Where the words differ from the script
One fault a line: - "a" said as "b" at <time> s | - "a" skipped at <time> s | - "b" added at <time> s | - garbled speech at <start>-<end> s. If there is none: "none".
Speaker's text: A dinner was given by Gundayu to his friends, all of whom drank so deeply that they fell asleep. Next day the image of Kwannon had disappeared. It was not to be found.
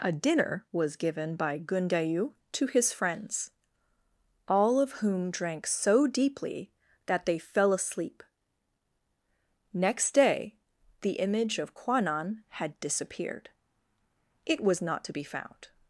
none